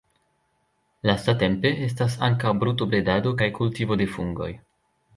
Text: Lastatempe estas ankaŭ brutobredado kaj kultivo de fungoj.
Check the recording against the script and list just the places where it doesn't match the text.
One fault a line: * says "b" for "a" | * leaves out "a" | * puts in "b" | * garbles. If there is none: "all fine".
all fine